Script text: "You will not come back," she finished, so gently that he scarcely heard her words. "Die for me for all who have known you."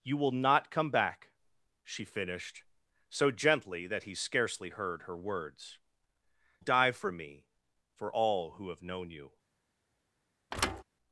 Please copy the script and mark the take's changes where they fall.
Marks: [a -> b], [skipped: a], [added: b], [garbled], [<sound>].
"You will not come back," she finished, so gently that he scarcely heard her words. "Die for me for all who have known you." [thud]